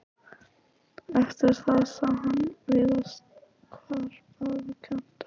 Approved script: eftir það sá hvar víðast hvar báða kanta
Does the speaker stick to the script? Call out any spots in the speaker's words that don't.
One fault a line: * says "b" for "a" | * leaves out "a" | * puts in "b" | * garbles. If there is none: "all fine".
* says "hann" for "hvar"